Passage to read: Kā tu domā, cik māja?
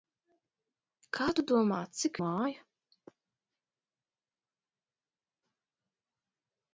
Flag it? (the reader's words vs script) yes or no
no